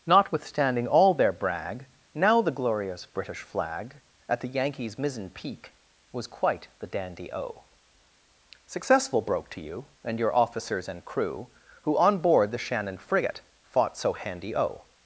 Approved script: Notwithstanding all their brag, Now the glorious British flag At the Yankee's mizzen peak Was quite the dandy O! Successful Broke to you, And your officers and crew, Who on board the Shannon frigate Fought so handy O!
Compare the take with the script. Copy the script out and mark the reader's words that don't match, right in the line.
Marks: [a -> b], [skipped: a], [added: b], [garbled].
Notwithstanding all their brag, Now the glorious British flag At the Yankee's mizzen peak Was quite the dandy O! Successful Broke to you, And your officers and crew, Who on board the Shannon frigate Fought so handy O!